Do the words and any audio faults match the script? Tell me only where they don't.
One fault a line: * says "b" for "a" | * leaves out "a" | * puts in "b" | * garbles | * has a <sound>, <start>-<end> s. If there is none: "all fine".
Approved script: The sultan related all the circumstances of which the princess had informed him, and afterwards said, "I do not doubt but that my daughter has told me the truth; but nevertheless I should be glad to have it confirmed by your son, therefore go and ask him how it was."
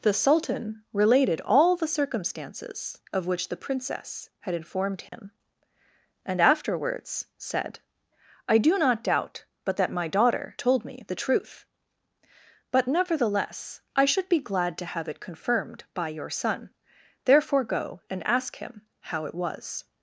* has a dropout, 5.1-5.1 s
* leaves out "has"